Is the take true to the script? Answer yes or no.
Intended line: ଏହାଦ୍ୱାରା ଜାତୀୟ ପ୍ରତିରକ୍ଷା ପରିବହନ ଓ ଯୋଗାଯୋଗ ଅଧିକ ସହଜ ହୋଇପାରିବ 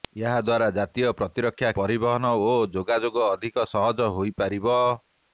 yes